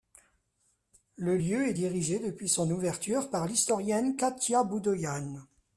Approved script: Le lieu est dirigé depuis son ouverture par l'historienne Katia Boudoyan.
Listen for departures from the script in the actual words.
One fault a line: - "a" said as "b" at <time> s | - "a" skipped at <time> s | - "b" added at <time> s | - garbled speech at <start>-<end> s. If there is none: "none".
none